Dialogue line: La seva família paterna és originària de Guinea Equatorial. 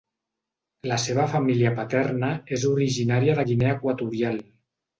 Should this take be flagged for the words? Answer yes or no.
no